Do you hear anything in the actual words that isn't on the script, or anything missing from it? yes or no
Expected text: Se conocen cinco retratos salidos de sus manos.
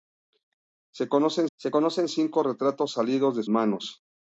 yes